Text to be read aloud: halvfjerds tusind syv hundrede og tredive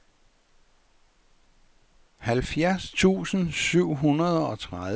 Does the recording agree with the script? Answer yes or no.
yes